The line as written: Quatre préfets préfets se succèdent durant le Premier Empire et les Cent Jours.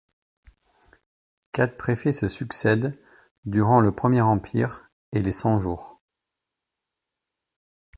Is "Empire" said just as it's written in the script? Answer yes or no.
yes